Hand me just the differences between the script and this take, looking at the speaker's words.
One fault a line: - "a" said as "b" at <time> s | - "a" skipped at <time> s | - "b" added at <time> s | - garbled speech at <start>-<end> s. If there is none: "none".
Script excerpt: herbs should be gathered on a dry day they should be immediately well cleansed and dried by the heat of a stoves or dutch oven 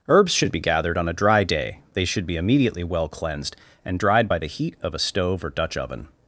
- "stoves" said as "stove" at 5.0 s